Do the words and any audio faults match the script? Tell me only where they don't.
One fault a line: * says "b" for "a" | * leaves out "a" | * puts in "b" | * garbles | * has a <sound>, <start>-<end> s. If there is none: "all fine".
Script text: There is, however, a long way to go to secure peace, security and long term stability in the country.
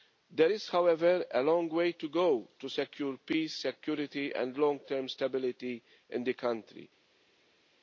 all fine